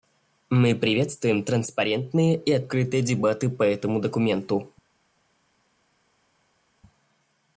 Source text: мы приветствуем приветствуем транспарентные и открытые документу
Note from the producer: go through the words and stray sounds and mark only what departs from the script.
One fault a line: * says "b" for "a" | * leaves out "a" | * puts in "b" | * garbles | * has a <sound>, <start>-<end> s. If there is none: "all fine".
* leaves out "приветствуем"
* puts in "дебаты по этому"